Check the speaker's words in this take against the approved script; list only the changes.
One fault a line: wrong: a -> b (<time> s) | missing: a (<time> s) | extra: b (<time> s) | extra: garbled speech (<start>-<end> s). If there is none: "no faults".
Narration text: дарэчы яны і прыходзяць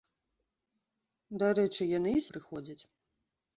no faults